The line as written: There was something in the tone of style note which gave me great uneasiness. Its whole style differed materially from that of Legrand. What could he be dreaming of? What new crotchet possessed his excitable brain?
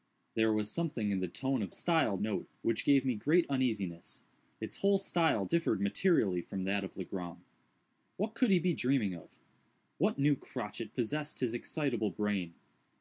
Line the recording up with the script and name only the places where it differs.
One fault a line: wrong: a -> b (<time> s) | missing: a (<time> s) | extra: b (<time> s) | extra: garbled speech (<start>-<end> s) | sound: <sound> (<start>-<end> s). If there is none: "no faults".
no faults